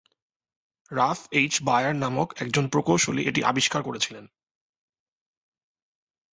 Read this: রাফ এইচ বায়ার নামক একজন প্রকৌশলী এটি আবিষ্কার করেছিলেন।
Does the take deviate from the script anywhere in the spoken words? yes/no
no